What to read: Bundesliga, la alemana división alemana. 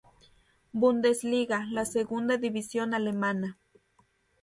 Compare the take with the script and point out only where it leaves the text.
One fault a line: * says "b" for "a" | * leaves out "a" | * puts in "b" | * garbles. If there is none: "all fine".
* says "segunda" for "alemana"